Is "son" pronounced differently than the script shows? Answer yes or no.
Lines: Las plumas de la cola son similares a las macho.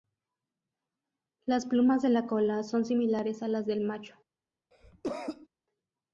no